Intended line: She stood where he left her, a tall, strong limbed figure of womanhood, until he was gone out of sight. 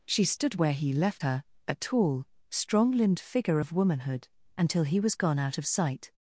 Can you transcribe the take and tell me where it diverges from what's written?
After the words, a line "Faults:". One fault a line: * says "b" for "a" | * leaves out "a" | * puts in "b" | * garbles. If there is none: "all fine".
She stood where he left her, a tall, strong limbed figure of womanhood, until he was gone out of sight.
Faults:
all fine